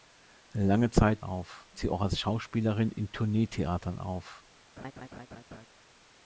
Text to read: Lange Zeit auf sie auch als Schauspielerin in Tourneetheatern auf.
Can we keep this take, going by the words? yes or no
yes